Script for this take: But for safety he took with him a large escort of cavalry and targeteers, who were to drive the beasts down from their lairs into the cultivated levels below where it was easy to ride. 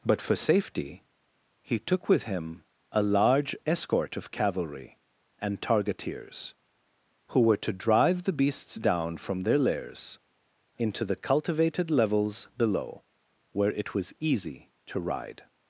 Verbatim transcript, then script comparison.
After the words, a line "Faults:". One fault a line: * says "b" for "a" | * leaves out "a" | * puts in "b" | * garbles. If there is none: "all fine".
But for safety he took with him a large escort of cavalry and targeteers, who were to drive the beasts down from their lairs into the cultivated levels below where it was easy to ride.
Faults:
all fine